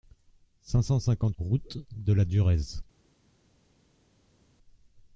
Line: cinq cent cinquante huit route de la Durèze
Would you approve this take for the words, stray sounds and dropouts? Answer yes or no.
no